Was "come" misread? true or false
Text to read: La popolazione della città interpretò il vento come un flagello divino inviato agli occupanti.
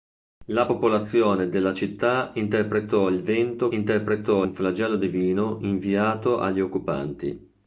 true